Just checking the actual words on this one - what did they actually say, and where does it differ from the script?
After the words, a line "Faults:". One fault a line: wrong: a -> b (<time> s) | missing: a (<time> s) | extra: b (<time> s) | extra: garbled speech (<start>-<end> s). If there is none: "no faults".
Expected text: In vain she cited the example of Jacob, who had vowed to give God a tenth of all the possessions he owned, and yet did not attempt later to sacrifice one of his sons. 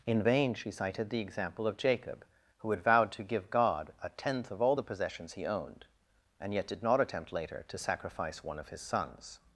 In vain she cited the example of Jacob, who had vowed to give God a tenth of all the possessions he owned, and yet did not attempt later to sacrifice one of his sons.
Faults:
no faults